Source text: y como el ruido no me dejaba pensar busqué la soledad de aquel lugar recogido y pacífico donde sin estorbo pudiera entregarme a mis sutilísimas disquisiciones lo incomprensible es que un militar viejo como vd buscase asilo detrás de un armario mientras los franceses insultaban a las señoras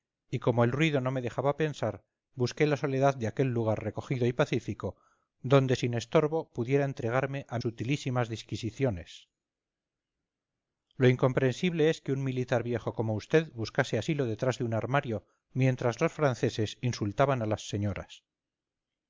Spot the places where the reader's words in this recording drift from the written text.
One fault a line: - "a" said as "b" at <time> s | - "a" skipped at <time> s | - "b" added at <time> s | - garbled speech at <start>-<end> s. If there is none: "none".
- "mis" skipped at 7.6 s